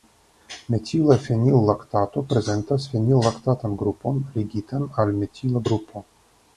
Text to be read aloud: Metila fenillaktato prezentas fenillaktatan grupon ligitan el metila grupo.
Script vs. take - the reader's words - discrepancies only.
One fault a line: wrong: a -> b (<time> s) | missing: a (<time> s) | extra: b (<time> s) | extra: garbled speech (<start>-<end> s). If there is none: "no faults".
wrong: el -> al (5.0 s)